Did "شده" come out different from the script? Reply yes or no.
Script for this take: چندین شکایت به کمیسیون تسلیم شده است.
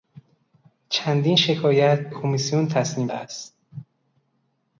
yes